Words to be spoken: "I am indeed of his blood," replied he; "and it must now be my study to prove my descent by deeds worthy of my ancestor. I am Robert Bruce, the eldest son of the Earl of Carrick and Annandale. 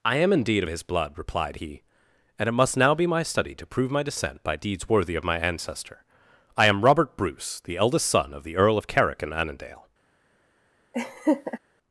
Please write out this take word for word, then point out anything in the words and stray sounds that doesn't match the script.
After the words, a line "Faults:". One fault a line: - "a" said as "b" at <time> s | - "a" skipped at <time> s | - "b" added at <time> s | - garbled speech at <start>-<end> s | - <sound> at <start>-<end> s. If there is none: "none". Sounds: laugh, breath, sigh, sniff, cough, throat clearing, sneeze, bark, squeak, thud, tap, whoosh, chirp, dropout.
"I am indeed of his blood," replied he; "and it must now be my study to prove my descent by deeds worthy of my ancestor. I am Robert Bruce, the eldest son of the Earl of Carrick and Annandale.
Faults:
- laugh at 10.9-11.6 s